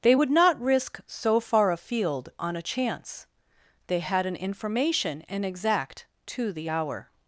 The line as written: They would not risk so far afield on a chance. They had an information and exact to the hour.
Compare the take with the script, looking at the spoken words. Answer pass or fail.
pass